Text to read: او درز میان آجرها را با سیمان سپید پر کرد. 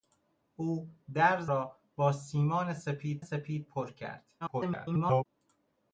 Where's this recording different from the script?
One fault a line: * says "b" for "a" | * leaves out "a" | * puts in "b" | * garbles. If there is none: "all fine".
* leaves out "میان آجرها"
* puts in "سپید"
* garbles